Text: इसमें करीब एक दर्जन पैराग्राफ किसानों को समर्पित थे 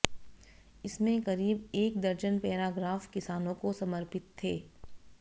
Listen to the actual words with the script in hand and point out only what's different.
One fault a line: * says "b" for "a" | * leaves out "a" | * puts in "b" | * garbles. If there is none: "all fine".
all fine